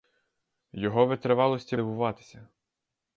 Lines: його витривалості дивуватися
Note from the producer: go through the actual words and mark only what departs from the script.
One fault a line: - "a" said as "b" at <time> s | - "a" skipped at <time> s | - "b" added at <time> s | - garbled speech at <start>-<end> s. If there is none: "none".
none